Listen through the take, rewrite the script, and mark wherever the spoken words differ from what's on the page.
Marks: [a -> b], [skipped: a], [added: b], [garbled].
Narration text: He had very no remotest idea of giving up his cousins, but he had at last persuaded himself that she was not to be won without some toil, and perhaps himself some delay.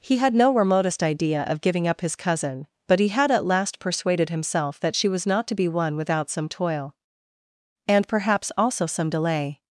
He had [skipped: very] no remotest idea of giving up his [cousins, -> cousin] but he had at last persuaded himself that she was not to be won without some toil, and perhaps [himself -> also] some delay.